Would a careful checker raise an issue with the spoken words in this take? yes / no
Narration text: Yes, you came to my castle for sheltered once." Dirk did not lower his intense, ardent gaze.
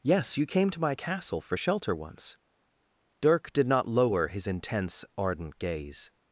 yes